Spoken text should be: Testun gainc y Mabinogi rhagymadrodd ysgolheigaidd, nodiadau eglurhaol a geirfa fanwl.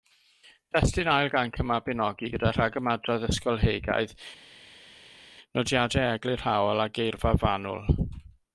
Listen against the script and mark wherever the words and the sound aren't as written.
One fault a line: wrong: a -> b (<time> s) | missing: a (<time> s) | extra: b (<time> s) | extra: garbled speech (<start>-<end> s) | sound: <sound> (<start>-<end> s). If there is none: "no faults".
extra: ail (1.1 s)
extra: gyda (2.3 s)